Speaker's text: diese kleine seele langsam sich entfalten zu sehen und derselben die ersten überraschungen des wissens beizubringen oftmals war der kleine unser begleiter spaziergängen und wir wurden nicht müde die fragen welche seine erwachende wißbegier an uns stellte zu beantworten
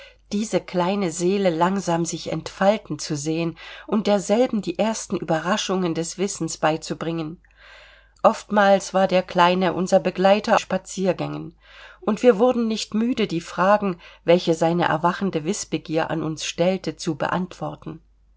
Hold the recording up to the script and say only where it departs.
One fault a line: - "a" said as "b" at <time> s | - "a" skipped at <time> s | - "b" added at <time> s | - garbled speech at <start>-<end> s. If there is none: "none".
none